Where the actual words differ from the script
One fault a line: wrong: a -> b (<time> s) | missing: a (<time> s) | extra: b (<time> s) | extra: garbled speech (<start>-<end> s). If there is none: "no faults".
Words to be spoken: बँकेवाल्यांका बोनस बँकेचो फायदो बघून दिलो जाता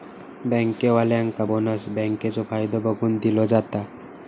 no faults